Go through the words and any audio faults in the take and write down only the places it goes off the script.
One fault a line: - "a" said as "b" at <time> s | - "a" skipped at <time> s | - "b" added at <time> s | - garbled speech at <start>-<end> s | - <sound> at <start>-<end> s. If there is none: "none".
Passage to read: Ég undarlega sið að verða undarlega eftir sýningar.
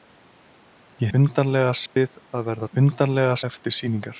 - dropout at 1.9-2.0 s